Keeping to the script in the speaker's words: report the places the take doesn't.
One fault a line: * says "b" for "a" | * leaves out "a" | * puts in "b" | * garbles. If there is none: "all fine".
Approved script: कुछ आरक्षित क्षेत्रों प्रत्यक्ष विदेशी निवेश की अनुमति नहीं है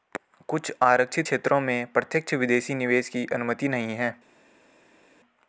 * puts in "में"